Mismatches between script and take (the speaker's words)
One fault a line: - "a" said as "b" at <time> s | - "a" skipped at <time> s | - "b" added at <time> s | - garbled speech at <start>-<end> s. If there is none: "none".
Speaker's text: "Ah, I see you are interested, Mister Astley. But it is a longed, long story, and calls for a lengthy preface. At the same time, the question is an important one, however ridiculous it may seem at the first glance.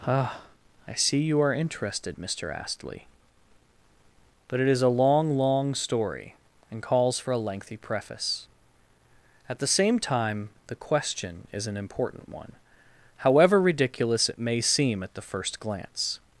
- "longed" said as "long" at 4.9 s